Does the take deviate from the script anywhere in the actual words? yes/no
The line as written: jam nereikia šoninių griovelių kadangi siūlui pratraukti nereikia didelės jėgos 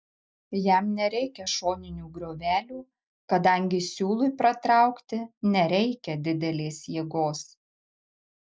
no